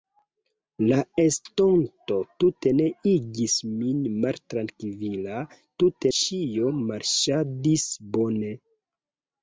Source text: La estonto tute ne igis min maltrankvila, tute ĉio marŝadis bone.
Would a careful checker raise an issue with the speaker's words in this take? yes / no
no